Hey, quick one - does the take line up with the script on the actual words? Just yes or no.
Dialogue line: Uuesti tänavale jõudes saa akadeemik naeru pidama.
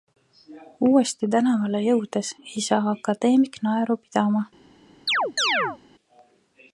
no